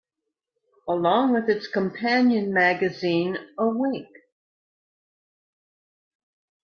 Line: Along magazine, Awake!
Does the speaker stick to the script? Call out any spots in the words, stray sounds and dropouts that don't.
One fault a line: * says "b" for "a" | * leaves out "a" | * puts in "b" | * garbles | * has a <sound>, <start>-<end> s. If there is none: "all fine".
* puts in "with its companion"